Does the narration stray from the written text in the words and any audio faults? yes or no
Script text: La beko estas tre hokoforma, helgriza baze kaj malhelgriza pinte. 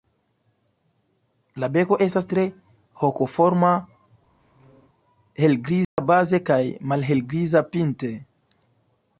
yes